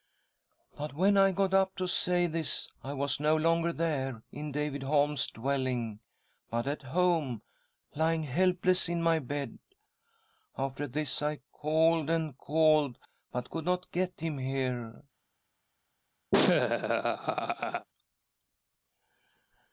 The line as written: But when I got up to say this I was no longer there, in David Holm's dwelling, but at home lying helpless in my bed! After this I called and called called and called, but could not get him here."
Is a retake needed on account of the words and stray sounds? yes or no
yes